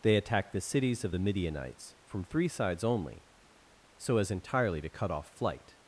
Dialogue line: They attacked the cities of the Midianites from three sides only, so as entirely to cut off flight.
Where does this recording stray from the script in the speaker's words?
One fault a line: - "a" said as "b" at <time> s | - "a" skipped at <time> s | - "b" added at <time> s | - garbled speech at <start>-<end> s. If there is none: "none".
none